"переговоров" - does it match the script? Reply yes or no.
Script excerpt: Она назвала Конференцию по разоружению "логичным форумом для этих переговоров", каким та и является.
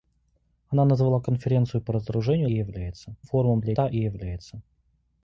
no